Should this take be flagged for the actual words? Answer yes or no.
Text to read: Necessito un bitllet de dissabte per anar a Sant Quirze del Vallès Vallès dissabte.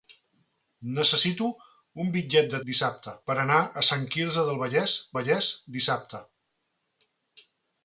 no